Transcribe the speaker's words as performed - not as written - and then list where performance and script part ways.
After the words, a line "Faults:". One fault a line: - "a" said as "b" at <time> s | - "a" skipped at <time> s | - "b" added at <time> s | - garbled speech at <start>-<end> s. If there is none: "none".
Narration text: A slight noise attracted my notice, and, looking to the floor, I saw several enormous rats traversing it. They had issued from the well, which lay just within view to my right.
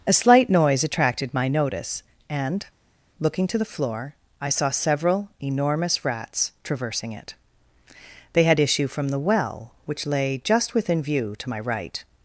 A slight noise attracted my notice, and, looking to the floor, I saw several enormous rats traversing it. They had issue from the well, which lay just within view to my right.
Faults:
- "issued" said as "issue" at 8.6 s